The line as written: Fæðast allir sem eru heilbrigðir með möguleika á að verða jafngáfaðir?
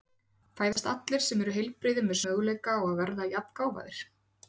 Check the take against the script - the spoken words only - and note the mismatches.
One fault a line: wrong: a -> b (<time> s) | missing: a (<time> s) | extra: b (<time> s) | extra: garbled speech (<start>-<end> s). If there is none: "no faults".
no faults